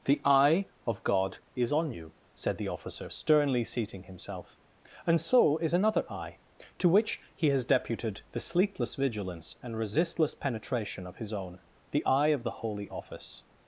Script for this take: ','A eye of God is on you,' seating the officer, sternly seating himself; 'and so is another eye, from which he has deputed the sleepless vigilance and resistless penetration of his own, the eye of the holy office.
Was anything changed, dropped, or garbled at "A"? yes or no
yes